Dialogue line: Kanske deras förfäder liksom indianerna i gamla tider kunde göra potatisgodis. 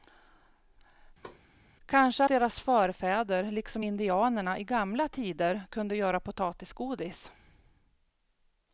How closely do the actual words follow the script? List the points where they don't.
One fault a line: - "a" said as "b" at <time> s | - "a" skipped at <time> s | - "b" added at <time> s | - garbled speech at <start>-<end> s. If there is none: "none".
none